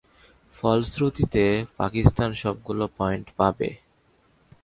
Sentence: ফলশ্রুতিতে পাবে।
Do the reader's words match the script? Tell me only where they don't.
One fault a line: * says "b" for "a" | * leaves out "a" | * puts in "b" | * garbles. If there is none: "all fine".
* puts in "পাকিস্তান সবগুলো পয়েন্ট"